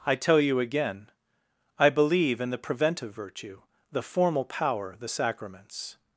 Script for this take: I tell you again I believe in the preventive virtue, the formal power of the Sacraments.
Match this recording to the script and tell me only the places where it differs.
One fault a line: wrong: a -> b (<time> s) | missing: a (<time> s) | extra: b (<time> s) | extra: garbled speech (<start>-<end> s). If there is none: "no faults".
missing: of (5.0 s)